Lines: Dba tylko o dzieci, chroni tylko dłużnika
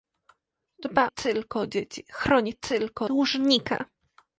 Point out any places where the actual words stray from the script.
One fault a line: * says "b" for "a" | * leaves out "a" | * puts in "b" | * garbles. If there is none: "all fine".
all fine